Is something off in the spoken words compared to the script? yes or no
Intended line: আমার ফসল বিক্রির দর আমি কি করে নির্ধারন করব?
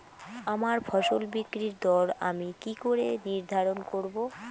no